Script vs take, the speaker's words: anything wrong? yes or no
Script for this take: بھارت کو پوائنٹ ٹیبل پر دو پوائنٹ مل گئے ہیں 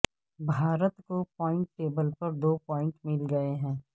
no